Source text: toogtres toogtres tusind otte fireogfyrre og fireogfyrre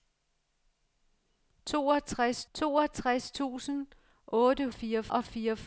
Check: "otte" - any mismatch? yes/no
no